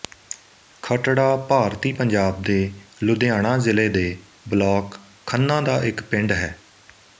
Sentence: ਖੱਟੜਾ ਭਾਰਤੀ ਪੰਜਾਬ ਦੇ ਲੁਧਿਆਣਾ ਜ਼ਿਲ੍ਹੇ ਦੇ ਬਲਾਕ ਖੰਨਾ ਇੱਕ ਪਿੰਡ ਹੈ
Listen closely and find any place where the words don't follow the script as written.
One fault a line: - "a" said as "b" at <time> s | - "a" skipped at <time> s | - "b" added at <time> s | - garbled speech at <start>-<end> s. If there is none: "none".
- "ਦਾ" added at 5.6 s